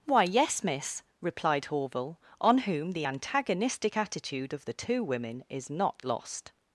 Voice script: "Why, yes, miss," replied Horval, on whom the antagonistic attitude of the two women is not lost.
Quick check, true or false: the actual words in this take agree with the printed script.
true